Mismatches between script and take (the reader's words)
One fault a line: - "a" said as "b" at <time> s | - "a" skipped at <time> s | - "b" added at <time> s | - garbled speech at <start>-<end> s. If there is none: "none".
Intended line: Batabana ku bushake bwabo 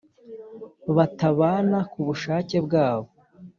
none